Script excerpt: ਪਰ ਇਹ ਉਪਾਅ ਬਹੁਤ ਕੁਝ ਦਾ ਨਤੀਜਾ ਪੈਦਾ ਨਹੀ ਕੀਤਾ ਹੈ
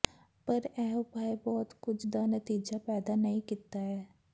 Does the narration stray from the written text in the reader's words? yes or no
no